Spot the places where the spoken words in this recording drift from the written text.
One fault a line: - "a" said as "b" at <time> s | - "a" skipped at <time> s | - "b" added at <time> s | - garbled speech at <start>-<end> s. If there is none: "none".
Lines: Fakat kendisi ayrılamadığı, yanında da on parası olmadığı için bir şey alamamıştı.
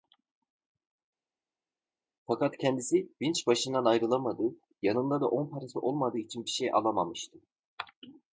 - "vinç başından" added at 3.2 s